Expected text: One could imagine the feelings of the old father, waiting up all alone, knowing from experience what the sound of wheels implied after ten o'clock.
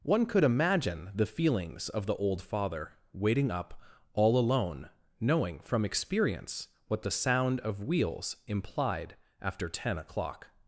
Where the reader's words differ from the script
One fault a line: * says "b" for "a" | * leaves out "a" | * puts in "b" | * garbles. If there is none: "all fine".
all fine